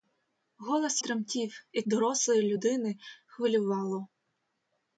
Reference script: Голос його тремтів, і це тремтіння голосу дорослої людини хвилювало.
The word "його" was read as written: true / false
false